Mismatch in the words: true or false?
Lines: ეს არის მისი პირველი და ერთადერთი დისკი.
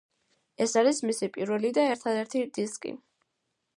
false